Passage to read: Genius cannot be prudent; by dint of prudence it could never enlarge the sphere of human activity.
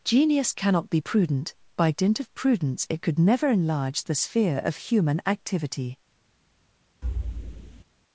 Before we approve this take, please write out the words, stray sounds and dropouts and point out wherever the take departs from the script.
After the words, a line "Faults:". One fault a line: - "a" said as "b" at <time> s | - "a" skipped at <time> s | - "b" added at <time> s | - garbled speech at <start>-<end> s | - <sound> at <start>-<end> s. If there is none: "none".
Genius cannot be prudent; by dint of prudence it could never enlarge the sphere of human activity.
Faults:
- thud at 7.0-7.8 s